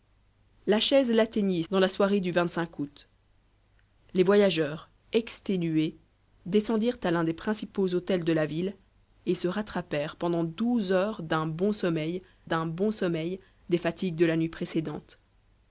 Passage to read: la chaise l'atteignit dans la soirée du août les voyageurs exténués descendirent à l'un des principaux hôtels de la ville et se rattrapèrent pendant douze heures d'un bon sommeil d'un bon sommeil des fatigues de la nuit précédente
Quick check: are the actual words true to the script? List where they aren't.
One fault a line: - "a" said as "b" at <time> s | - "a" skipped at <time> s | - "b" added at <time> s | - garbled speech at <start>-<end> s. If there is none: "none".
none